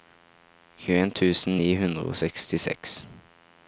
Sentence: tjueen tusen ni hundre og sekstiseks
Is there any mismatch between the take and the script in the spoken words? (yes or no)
no